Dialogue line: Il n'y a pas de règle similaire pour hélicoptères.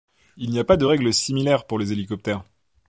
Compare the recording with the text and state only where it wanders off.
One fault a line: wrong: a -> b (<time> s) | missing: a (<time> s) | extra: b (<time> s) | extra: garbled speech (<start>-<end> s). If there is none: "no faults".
extra: les (1.8 s)